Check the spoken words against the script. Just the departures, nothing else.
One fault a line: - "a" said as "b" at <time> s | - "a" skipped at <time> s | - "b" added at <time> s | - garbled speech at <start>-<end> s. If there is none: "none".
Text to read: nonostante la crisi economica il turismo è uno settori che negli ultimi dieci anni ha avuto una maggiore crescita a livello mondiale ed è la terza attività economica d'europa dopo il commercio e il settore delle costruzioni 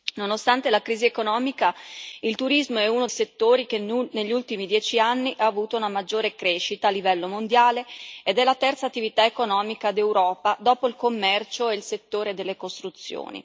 none